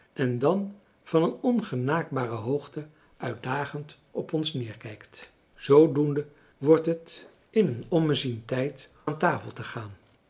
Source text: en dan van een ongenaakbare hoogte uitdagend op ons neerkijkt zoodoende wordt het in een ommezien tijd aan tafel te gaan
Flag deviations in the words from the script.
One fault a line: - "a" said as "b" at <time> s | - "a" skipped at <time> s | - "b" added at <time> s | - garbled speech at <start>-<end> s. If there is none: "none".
none